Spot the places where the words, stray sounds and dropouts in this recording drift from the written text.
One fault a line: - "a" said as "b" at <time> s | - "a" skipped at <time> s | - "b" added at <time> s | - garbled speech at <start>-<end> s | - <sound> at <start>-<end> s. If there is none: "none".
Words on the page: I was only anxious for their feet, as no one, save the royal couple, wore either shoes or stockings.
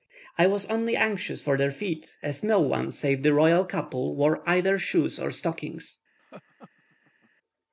- laugh at 6.2-7.3 s